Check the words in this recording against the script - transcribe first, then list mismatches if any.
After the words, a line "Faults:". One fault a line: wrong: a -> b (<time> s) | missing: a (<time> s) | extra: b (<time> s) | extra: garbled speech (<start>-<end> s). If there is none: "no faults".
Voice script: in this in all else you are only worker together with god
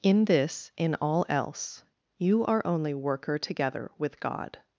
in this in all else you are only worker together with god
Faults:
no faults